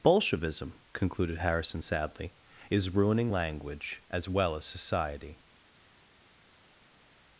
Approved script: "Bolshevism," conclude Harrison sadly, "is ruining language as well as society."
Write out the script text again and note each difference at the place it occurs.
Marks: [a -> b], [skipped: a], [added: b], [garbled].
"Bolshevism," [conclude -> concluded] Harrison sadly, "is ruining language as well as society."